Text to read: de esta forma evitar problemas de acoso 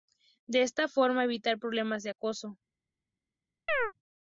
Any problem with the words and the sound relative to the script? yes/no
yes